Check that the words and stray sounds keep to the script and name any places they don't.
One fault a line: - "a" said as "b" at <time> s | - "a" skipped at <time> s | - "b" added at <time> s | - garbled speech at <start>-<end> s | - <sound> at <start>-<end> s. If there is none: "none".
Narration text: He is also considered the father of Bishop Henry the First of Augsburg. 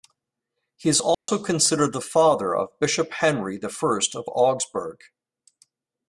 - dropout at 1.1-1.3 s